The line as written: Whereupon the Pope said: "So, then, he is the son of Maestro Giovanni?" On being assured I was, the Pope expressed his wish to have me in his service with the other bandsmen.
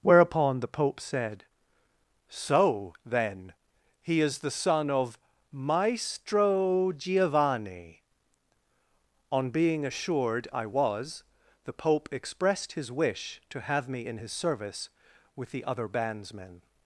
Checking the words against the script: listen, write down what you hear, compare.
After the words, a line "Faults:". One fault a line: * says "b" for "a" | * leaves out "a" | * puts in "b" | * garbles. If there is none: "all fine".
Whereupon the Pope said: "So, then, he is the son of Maestro Giovanni?" On being assured I was, the Pope expressed his wish to have me in his service with the other bandsmen.
Faults:
all fine